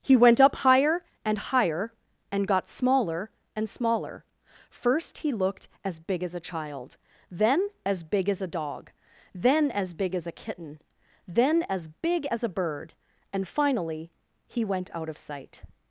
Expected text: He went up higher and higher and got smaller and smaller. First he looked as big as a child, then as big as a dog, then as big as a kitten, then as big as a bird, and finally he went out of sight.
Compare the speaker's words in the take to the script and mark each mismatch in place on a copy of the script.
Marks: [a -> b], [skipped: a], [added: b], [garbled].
He went up higher and higher and got smaller and smaller. First he looked as big as a child, then as big as a dog, then as big as a kitten, then as big as a bird, and finally he went out of sight.